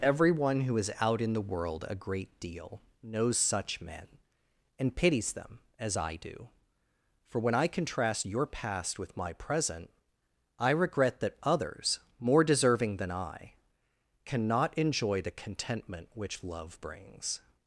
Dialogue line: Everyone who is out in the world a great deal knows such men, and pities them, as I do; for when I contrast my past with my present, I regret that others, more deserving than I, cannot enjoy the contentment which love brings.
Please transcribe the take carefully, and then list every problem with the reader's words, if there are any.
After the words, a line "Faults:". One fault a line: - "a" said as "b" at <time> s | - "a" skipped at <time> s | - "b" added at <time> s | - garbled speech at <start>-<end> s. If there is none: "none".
Everyone who is out in the world a great deal knows such men, and pities them, as I do; for when I contrast your past with my present, I regret that others, more deserving than I, cannot enjoy the contentment which love brings.
Faults:
- "my" said as "your" at 8.2 s